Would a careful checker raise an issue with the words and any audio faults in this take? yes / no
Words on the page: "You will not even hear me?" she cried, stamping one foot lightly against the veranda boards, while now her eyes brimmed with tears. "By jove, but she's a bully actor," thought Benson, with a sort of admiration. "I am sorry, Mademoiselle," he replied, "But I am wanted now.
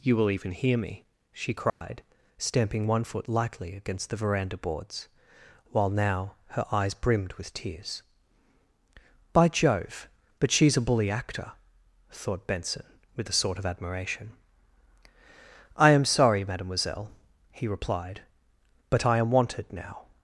yes